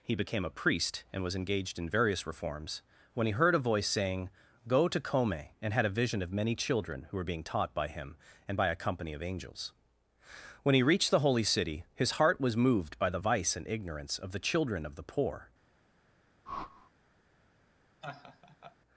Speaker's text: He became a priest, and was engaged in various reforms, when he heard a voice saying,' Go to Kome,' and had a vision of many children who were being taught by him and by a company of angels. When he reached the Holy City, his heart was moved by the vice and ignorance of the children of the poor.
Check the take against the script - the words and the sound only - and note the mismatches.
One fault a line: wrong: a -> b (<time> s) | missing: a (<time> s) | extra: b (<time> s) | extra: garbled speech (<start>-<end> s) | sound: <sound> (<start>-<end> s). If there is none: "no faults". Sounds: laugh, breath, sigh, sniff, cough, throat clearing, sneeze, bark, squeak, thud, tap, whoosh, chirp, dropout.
sound: whoosh (16.5-16.9 s)
sound: laugh (18.0-18.8 s)